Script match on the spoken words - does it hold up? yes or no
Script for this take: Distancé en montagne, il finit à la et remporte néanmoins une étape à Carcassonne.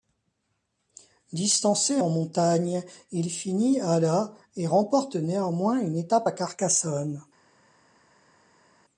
yes